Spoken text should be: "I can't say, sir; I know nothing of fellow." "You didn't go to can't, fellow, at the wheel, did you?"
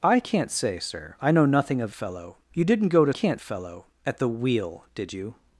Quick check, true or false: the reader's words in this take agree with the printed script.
true